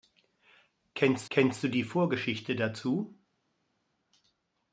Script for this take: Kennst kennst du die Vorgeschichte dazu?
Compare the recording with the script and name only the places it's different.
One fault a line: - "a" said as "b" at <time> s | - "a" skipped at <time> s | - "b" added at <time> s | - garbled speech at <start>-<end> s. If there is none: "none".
none